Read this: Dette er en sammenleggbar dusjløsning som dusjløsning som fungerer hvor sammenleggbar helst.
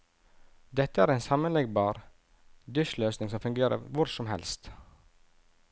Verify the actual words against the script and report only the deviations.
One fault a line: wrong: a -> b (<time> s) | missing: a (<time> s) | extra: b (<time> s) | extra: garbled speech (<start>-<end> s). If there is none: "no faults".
missing: dusjløsning som (3.4 s)
wrong: sammenleggbar -> som (4.2 s)